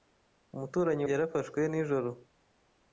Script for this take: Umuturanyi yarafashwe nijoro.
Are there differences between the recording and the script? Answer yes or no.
no